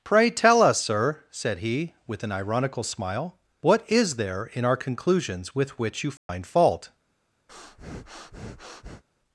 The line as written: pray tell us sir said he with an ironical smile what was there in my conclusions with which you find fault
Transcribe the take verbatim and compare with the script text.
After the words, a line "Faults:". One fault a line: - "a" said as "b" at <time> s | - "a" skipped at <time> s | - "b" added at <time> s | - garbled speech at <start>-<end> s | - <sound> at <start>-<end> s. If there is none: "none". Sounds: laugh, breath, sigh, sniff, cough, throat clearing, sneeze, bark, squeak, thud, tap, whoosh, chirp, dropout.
pray tell us sir said he with an ironical smile what is there in our conclusions with which you find fault
Faults:
- "was" said as "is" at 3.9 s
- "my" said as "our" at 4.6 s
- dropout at 6.2-6.3 s
- breath at 7.5-9.0 s